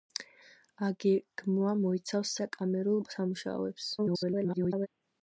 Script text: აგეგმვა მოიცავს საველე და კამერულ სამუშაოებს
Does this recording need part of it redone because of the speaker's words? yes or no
yes